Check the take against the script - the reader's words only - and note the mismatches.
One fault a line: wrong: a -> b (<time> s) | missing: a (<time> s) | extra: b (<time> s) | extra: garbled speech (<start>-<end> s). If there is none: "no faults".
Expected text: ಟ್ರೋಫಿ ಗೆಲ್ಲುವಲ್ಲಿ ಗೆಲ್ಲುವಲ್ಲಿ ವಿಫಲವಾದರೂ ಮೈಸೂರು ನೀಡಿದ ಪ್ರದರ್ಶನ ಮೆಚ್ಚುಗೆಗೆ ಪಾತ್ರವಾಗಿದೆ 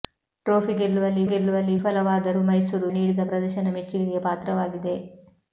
no faults